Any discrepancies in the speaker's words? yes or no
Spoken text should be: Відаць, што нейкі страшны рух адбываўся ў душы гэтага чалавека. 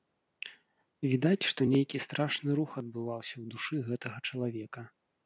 no